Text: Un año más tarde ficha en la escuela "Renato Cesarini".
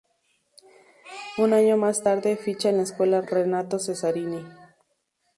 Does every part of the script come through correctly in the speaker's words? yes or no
yes